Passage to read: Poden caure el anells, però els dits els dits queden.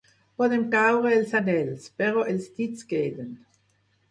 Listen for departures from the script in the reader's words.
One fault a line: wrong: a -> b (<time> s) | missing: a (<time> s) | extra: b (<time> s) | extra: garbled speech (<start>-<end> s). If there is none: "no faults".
wrong: el -> els (1.2 s)
missing: els dits (2.9 s)